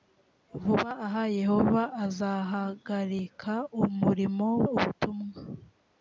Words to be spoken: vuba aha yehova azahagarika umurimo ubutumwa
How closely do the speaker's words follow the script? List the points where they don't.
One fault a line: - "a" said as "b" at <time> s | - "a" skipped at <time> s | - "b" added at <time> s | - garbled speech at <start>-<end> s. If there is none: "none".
none